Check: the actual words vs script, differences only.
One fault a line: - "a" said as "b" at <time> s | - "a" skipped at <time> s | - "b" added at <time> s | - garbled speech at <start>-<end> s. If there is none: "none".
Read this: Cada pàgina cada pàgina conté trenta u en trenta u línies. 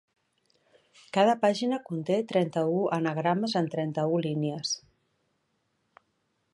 - "cada pàgina" skipped at 1.8 s
- "anagrames" added at 3.0 s